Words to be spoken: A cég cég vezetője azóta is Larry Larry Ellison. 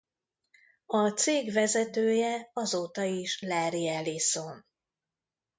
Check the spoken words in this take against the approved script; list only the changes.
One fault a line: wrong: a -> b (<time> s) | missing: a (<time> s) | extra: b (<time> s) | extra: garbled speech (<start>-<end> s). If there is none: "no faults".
missing: cég (1.5 s)
missing: Larry (3.9 s)